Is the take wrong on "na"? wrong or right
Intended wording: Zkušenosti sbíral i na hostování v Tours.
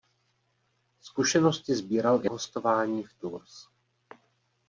wrong